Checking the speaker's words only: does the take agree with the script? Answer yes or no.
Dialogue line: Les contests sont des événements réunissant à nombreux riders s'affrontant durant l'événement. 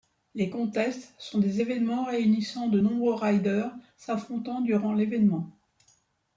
no